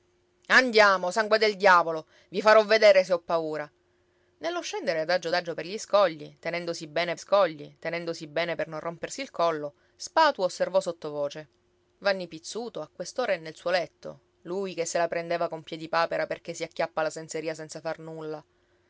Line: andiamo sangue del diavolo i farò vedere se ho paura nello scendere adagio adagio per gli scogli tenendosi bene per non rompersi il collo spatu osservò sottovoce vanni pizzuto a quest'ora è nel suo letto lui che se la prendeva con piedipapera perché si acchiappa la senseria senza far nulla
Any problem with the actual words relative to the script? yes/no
yes